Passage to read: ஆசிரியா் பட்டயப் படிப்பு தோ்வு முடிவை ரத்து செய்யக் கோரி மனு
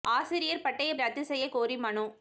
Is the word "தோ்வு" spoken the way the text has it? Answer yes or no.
no